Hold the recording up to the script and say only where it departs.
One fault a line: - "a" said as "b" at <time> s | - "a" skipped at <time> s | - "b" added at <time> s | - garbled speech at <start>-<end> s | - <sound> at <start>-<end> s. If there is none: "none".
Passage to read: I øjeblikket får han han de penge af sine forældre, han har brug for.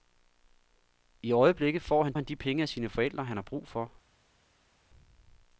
none